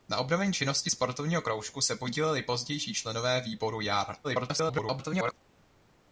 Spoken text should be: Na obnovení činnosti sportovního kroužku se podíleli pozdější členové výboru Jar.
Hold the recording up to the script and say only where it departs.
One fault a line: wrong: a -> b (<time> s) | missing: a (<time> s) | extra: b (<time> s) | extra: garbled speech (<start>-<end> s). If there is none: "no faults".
extra: garbled speech (4.2-5.3 s)